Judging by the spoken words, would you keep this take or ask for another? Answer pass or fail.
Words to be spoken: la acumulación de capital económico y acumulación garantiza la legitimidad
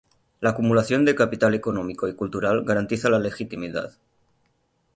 fail